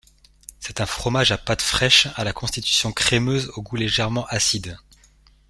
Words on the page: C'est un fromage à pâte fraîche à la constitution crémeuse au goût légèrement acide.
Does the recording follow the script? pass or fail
pass